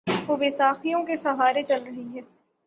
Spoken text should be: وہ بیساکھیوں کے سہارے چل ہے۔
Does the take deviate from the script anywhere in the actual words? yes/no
yes